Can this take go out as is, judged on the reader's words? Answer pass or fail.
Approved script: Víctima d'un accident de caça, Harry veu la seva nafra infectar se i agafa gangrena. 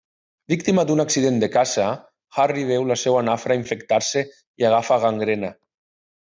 pass